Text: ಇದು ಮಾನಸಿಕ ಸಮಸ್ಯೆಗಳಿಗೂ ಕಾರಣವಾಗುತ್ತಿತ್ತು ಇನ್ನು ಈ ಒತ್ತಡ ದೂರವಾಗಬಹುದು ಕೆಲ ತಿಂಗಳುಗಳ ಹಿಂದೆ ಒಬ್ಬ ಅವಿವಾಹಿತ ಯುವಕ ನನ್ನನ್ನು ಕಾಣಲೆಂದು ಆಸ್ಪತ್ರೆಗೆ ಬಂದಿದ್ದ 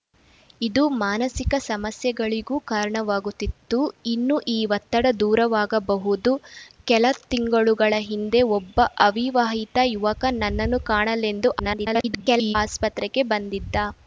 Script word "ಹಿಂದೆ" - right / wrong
right